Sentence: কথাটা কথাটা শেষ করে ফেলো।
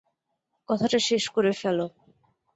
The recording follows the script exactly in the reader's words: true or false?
false